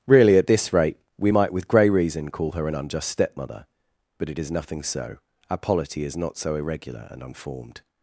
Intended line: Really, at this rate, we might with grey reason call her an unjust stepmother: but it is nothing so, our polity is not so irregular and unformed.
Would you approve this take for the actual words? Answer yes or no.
yes